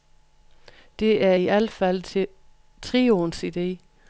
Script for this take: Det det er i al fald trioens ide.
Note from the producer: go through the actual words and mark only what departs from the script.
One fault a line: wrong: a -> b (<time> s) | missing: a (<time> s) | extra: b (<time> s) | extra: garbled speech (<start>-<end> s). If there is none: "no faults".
missing: det (1.2 s)